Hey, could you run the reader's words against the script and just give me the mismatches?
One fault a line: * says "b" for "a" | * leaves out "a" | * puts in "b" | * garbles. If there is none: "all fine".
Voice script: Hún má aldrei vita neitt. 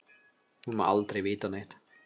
all fine